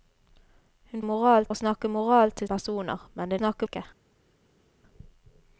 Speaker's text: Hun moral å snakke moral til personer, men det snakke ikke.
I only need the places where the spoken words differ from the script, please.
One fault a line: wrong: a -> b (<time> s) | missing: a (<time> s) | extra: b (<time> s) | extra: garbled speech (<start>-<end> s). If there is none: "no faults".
no faults